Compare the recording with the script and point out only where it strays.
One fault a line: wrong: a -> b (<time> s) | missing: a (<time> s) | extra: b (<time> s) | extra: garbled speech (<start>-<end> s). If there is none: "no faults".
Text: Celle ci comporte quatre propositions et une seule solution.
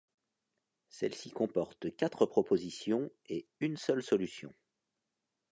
no faults